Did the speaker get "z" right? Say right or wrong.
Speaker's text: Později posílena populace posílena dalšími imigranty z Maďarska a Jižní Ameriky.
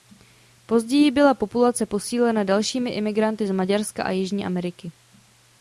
right